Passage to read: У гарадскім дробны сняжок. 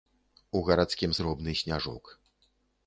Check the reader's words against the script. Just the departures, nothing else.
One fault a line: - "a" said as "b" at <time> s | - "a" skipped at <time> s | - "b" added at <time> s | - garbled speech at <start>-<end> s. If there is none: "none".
none